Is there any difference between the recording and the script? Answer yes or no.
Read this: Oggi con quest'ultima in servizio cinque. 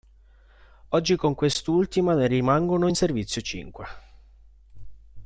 yes